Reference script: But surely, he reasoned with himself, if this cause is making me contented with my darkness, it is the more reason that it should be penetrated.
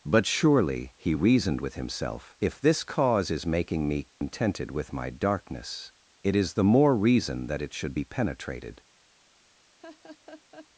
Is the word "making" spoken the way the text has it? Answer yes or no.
yes